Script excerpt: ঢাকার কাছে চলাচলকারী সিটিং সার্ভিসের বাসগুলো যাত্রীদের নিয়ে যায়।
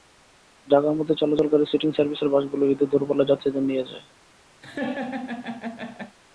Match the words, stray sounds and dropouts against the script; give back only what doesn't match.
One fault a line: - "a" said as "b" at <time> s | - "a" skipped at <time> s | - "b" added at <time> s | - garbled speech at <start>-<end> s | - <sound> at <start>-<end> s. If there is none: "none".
- "কাছে" said as "মধ্যে" at 1.0 s
- "ঈদে দূরপাল্লার" added at 2.6 s
- laugh at 4.6-6.2 s